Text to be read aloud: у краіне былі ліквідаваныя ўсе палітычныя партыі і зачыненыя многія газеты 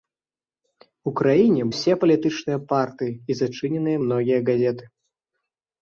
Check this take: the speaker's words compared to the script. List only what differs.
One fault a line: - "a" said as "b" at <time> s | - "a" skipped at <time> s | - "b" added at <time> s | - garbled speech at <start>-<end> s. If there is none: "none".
- "былі ліквідаваныя" skipped at 1.6 s